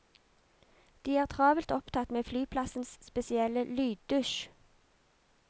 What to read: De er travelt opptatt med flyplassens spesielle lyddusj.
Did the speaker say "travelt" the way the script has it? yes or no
yes